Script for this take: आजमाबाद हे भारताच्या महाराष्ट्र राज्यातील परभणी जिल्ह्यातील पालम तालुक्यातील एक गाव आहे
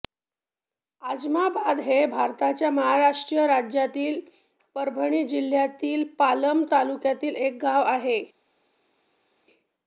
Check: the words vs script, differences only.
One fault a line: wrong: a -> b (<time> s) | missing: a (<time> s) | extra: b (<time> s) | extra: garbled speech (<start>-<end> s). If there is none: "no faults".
no faults